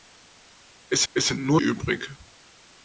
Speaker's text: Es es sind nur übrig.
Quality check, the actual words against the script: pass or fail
pass